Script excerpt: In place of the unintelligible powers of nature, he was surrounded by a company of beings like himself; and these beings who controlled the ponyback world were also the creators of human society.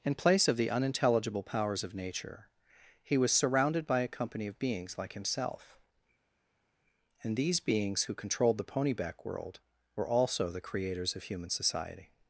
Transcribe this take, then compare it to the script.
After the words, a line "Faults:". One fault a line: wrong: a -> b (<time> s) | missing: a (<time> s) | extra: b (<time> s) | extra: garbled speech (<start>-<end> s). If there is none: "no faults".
In place of the unintelligible powers of nature, he was surrounded by a company of beings like himself; and these beings who controlled the ponyback world were also the creators of human society.
Faults:
no faults